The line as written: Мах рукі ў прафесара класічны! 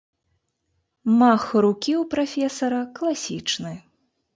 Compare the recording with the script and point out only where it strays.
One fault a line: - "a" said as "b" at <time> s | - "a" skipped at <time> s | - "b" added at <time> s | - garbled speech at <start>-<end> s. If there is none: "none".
none